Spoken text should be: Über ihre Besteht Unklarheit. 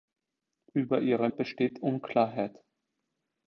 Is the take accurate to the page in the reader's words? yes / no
yes